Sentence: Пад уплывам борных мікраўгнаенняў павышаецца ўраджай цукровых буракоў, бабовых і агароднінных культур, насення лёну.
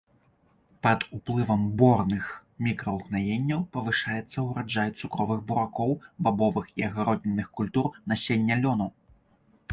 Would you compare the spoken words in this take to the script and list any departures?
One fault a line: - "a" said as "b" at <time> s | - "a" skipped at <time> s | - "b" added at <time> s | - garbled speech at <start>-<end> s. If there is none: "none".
none